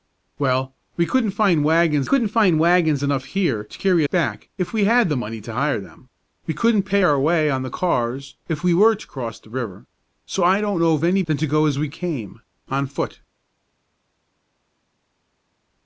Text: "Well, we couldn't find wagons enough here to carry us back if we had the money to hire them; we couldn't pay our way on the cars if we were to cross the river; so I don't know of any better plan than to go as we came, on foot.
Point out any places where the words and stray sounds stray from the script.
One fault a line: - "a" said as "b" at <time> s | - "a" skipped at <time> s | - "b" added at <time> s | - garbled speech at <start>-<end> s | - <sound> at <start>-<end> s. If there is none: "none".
- "couldn't find wagons" added at 2.0 s
- "us" skipped at 4.1 s
- "better plan" skipped at 11.2 s